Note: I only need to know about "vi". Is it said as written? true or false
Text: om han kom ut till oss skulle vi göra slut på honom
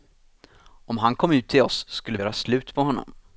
false